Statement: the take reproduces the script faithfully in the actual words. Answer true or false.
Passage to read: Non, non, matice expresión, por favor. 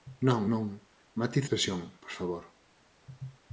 true